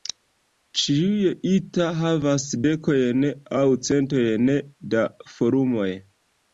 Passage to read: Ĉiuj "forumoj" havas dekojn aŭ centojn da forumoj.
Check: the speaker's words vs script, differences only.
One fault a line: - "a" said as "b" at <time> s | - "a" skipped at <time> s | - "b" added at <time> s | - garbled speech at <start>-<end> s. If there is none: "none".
- "forumoj" said as "ita" at 1.5 s